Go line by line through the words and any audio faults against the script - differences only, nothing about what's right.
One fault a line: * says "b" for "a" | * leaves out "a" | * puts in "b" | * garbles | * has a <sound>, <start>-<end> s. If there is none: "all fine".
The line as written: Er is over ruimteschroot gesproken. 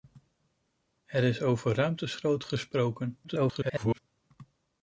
* garbles